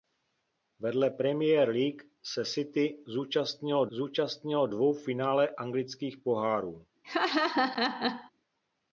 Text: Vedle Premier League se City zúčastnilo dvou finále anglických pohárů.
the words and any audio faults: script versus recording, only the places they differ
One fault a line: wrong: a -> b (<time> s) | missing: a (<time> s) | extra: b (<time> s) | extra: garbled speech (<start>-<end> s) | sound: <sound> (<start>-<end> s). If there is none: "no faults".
extra: zúčastnilo (3.9 s)
sound: laugh (7.0-8.3 s)